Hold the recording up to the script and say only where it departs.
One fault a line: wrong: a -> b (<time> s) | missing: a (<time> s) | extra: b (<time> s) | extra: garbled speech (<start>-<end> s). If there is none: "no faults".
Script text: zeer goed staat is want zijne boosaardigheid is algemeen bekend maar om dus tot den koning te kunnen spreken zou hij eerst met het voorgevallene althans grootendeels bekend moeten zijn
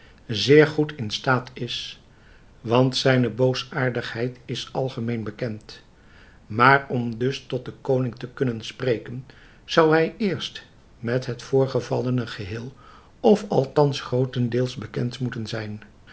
extra: in (0.9 s)
extra: geheel of (12.3 s)